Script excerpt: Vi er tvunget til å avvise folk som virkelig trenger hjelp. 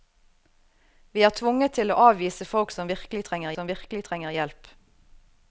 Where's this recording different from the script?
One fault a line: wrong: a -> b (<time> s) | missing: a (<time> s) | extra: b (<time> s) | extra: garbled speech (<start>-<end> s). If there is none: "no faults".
extra: som virkelig trenger (3.5 s)